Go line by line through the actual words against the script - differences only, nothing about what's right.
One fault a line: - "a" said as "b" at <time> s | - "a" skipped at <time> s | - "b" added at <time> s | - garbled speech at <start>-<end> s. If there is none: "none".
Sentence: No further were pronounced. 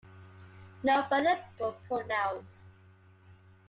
none